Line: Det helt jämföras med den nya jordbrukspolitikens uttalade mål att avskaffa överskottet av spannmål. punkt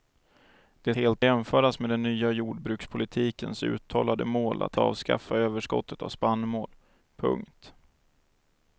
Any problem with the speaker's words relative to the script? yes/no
no